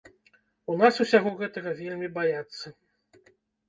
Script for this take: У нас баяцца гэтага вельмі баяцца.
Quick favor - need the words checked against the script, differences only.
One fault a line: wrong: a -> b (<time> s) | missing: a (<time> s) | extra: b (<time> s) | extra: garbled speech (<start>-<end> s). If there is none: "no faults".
wrong: баяцца -> усяго (1.1 s)